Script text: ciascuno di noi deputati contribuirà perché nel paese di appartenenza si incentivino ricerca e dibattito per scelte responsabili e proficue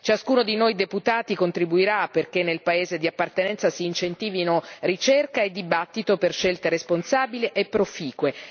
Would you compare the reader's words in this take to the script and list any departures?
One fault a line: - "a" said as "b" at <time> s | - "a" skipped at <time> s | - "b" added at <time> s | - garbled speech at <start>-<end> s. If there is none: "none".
none